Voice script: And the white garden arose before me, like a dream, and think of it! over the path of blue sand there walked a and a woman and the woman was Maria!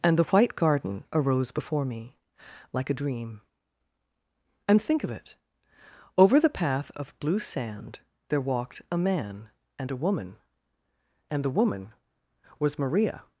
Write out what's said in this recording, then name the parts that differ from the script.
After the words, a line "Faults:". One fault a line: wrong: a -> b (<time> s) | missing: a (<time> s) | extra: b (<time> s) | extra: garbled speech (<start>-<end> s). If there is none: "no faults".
And the white garden arose before me, like a dream, and think of it! over the path of blue sand there walked a man and a woman and the woman was Maria!
Faults:
extra: man (9.0 s)